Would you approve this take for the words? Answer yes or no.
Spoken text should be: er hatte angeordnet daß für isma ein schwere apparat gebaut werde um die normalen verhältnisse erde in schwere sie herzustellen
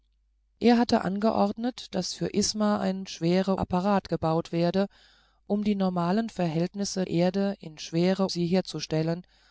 yes